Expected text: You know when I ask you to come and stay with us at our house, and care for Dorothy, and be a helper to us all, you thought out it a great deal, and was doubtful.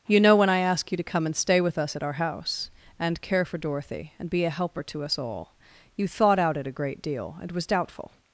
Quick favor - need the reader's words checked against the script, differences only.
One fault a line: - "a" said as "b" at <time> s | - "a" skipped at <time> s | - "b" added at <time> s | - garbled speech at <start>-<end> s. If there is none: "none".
none